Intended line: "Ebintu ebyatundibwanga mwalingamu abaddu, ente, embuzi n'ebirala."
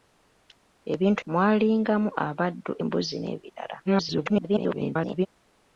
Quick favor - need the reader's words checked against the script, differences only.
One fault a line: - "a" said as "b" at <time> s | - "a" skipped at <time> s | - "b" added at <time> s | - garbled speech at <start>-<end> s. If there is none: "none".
- "ebyatundibwanga" skipped at 1.2 s
- "ente" skipped at 2.7 s
- garbled speech at 3.8-5.3 s